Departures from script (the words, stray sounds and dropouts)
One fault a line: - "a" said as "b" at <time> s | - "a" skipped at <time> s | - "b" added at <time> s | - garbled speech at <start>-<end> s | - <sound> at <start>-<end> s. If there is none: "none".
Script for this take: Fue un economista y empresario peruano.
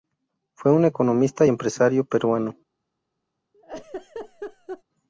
- laugh at 3.5-4.8 s